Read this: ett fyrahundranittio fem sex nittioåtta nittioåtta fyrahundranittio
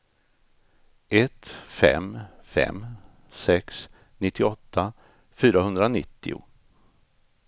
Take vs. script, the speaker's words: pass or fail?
fail